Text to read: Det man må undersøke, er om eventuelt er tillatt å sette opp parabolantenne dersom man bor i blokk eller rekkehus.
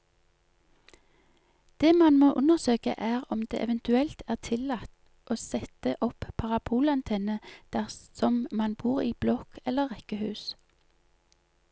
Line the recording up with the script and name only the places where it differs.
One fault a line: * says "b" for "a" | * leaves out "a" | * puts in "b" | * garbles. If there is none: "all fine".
* puts in "det"